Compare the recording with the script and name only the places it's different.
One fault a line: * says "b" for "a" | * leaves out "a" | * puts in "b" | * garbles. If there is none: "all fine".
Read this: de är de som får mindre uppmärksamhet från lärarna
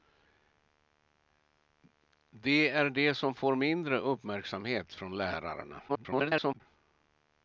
* garbles